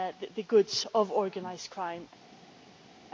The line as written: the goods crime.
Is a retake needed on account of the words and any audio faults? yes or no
yes